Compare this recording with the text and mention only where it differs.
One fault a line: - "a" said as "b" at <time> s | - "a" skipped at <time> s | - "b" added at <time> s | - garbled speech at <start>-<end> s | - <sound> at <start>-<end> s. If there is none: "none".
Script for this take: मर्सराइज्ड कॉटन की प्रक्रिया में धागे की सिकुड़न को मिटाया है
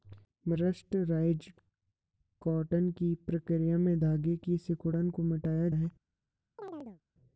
- chirp at 6.6-7.0 s